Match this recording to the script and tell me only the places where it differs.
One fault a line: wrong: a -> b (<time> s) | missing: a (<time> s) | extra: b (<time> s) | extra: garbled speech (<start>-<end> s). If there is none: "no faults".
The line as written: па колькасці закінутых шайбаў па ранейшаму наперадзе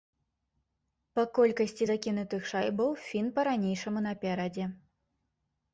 extra: фін (3.1 s)